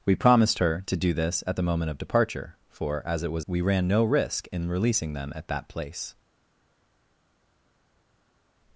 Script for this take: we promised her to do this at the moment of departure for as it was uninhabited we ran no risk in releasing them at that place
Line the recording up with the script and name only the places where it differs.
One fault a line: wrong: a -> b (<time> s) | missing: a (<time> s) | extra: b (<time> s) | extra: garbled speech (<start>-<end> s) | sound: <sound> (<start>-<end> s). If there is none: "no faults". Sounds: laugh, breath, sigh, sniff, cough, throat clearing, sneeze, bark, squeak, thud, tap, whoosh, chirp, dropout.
missing: uninhabited (3.5 s)